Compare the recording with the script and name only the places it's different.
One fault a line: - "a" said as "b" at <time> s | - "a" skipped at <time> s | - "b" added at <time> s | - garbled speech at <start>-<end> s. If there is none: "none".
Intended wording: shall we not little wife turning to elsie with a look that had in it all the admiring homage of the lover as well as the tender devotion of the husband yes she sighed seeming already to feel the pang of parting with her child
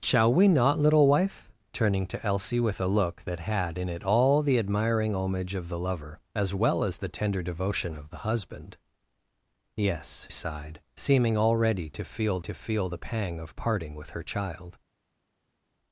- "she" skipped at 10.3 s
- "to feel" added at 12.4 s